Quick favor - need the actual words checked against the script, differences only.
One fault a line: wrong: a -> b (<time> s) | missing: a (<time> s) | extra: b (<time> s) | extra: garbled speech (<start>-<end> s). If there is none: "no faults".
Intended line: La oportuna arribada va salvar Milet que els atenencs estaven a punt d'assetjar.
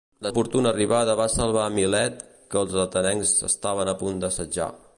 no faults